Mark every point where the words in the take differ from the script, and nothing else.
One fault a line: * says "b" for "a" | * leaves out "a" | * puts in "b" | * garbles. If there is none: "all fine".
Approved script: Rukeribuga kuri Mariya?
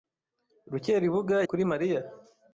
all fine